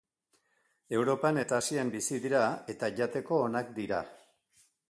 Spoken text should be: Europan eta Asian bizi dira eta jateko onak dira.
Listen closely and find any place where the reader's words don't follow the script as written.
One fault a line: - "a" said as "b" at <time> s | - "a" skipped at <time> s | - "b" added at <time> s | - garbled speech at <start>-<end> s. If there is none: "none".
none